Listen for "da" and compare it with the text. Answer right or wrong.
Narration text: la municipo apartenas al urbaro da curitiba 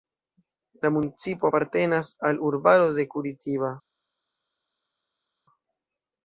wrong